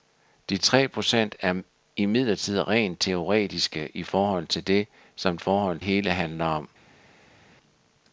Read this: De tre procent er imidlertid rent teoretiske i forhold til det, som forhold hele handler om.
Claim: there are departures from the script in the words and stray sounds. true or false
false